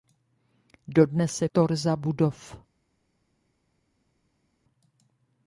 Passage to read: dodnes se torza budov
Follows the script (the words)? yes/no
yes